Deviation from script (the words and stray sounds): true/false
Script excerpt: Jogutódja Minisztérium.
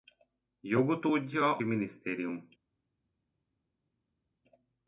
false